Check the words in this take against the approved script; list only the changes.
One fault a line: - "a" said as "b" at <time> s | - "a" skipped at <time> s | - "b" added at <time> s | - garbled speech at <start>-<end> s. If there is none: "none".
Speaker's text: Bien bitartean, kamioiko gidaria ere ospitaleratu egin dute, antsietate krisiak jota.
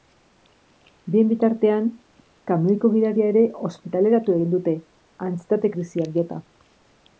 none